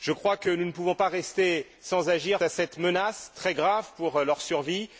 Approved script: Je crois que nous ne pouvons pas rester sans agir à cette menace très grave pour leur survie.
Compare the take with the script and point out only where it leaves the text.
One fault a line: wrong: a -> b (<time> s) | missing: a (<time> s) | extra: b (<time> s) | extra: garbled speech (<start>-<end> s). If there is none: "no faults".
no faults